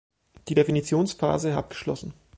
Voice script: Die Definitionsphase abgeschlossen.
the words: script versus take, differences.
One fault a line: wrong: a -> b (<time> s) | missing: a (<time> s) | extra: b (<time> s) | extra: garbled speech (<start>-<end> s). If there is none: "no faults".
no faults